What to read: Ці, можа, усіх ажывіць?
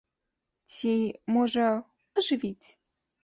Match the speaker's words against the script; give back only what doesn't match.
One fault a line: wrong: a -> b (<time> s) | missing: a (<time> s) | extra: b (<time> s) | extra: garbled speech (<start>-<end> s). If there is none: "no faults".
missing: усіх (1.7 s)